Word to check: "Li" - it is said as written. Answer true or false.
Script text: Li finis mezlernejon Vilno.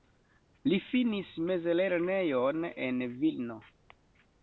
true